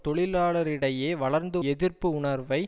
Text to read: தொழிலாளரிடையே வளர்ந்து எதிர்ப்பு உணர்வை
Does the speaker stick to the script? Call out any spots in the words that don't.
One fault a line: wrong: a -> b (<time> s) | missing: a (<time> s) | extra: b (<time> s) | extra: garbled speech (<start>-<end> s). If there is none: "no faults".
no faults